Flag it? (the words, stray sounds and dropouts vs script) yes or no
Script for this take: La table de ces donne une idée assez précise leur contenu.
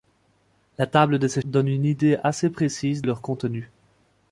no